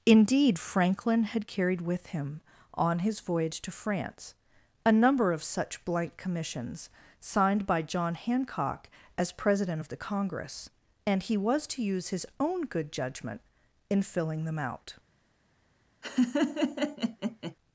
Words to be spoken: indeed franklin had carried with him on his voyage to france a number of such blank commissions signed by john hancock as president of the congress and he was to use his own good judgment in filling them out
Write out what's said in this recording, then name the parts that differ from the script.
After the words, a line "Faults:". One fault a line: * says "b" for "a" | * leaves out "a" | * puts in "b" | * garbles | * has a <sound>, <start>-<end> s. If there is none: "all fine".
indeed franklin had carried with him on his voyage to france a number of such blank commissions signed by john hancock as president of the congress and he was to use his own good judgment in filling them out
Faults:
* has a laugh, 16.0-17.5 s